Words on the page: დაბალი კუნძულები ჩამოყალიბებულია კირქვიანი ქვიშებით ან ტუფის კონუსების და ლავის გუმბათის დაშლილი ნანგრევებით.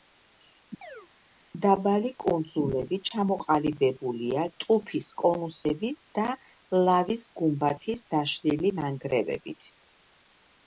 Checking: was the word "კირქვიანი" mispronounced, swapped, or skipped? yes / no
yes